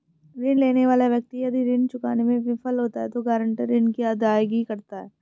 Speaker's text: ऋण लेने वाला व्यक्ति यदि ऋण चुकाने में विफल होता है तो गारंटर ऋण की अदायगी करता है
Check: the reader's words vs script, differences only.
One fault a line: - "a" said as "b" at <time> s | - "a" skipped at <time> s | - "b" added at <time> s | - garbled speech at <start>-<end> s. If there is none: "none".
none